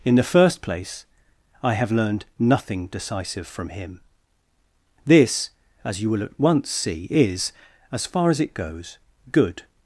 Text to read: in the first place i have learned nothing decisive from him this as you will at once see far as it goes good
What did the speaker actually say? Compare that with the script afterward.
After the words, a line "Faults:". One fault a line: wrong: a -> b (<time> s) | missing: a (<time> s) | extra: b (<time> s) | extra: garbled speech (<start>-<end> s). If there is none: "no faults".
in the first place i have learned nothing decisive from him this as you will at once see is as far as it goes good
Faults:
extra: is as (7.1 s)